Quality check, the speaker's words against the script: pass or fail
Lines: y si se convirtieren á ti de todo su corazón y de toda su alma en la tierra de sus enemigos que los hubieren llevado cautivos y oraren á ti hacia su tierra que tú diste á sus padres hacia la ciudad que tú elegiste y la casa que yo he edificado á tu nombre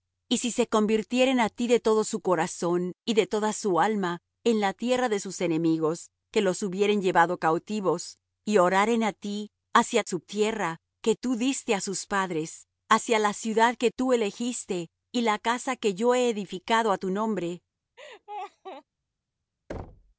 pass